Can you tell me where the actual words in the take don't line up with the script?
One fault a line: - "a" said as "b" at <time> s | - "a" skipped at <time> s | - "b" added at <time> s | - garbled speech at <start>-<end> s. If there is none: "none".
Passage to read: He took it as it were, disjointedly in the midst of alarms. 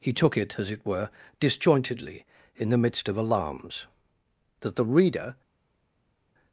- "That the reader" added at 4.6 s